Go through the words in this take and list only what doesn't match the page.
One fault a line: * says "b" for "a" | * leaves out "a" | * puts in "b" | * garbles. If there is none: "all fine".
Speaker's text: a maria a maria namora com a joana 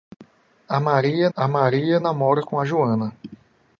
all fine